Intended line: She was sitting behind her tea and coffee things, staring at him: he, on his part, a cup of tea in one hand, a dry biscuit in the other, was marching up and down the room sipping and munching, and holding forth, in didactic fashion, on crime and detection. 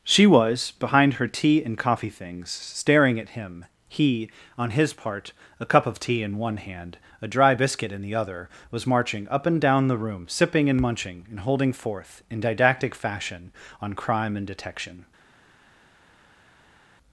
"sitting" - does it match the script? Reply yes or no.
no